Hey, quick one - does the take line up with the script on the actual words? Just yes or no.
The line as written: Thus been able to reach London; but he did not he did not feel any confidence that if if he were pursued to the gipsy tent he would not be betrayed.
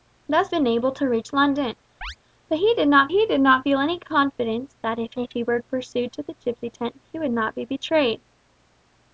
yes